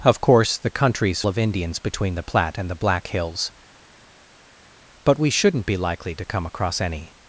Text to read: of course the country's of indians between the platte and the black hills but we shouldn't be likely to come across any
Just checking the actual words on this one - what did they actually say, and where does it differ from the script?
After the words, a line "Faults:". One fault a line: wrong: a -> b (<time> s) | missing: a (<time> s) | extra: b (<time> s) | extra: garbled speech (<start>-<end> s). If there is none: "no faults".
of course the country's of indians between the platte and the black hills but we shouldn't be likely to come across any
Faults:
no faults